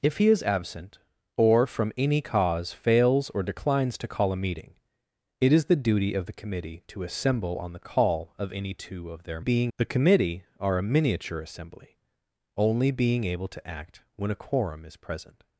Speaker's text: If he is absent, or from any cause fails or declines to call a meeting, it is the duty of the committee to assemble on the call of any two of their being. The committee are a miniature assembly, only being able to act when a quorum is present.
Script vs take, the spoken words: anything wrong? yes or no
no